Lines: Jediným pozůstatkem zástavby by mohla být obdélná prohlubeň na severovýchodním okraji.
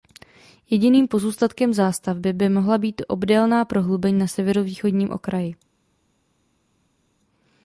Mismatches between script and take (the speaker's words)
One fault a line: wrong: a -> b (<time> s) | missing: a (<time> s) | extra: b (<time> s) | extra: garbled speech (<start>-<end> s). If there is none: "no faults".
no faults